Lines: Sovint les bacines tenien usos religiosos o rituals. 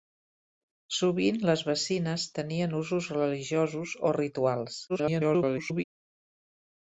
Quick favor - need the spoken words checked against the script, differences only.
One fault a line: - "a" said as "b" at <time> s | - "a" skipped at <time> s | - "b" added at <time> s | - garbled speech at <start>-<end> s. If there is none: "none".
- garbled speech at 4.9-5.8 s